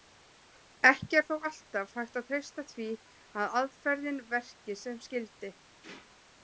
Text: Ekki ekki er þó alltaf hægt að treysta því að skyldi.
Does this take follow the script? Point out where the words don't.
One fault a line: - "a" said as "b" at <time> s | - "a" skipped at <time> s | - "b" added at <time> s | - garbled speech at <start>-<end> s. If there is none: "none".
- "ekki" skipped at 1.2 s
- "aðferðin verki sem" added at 3.6 s